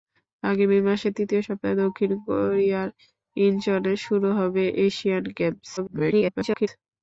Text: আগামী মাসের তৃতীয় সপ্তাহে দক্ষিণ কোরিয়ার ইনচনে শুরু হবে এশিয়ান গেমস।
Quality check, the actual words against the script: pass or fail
fail